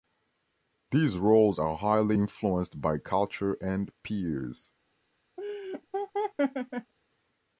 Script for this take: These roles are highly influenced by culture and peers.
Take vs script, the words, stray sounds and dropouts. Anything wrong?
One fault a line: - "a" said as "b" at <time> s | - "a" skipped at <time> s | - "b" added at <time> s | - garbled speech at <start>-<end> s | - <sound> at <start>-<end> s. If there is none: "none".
- laugh at 5.4-6.9 s